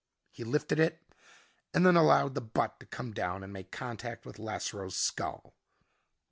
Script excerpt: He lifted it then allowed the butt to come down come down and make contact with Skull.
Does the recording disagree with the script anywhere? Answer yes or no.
yes